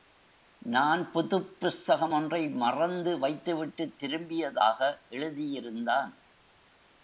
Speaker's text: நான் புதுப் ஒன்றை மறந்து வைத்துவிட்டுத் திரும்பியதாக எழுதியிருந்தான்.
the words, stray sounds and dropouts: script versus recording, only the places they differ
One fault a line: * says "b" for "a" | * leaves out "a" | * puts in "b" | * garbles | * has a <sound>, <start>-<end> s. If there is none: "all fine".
* puts in "புஸ்தகம்"